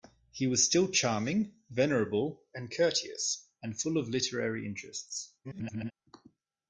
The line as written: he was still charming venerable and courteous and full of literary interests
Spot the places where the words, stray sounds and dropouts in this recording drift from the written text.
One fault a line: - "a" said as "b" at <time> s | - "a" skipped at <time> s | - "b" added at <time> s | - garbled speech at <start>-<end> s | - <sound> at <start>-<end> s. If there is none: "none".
- garbled speech at 5.4-5.9 s